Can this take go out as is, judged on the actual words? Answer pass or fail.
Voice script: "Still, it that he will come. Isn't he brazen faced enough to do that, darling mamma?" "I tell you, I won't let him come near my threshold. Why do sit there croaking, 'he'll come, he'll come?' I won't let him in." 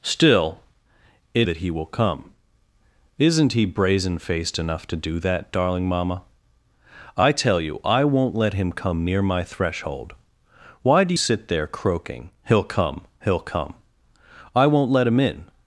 pass